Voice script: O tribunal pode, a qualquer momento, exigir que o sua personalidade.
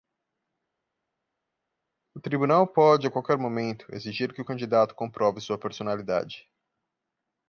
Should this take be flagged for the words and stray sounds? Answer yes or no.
yes